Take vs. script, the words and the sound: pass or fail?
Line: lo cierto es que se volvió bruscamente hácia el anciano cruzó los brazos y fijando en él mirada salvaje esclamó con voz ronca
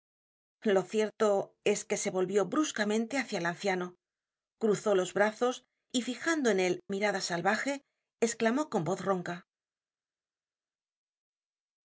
pass